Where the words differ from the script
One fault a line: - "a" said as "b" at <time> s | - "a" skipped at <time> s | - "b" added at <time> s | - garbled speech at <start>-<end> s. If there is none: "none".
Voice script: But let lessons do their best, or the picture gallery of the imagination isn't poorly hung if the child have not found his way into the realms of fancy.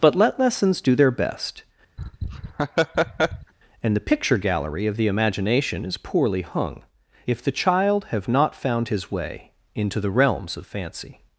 - "or" said as "and" at 3.8 s
- "isn't" said as "is" at 5.9 s